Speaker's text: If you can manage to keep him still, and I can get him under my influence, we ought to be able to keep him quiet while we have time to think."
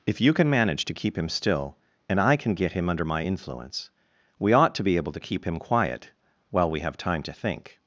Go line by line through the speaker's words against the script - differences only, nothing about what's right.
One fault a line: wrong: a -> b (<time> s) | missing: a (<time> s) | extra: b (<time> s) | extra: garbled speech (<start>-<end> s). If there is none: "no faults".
no faults